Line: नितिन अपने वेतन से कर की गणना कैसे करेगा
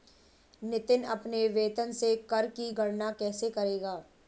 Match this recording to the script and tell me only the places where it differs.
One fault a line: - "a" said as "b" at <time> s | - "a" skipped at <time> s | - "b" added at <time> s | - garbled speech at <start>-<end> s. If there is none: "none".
none